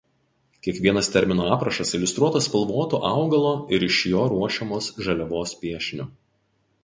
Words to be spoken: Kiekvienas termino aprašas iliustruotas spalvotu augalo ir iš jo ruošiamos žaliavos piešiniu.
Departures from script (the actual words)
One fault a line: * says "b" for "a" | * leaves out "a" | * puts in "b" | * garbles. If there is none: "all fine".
all fine